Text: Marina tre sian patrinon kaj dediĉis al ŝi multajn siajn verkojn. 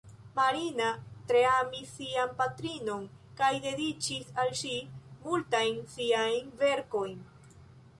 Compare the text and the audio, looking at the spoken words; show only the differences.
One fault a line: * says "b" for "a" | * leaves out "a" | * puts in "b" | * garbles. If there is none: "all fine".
* puts in "amis"